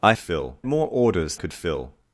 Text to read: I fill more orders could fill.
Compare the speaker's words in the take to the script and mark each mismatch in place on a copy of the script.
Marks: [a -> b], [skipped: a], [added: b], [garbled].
I fill more orders could fill.